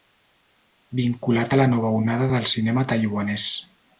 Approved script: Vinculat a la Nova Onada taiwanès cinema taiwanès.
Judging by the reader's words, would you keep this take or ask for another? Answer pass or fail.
fail